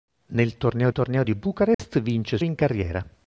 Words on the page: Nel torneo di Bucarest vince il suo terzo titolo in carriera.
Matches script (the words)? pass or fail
fail